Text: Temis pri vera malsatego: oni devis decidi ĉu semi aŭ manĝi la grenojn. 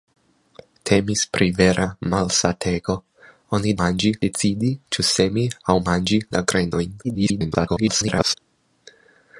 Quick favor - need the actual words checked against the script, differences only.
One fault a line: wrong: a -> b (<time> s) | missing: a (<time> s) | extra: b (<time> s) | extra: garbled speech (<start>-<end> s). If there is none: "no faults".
wrong: devis -> manĝi (3.8 s)
extra: garbled speech (7.0-8.3 s)